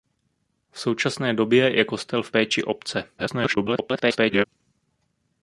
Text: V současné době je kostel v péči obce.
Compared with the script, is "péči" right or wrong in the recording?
right